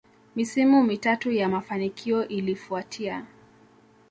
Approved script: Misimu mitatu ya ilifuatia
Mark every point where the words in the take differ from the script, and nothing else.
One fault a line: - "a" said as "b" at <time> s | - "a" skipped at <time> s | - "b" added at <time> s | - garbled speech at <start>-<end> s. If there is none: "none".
- "mafanikio" added at 1.5 s